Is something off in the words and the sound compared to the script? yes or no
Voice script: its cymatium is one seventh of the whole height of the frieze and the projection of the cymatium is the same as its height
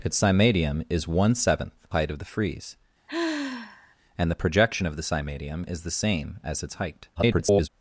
yes